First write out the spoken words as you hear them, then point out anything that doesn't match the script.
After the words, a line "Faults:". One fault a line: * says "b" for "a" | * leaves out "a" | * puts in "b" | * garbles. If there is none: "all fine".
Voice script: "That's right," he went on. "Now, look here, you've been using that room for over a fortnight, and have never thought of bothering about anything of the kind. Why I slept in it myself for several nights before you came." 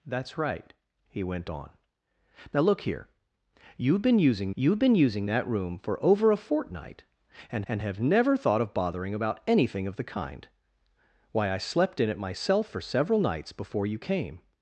"That's right," he went on. "Now, look here, you've been using you've been using that room for over a fortnight, and and have never thought of bothering about anything of the kind. Why I slept in it myself for several nights before you came."
Faults:
* puts in "you've been using"
* puts in "and"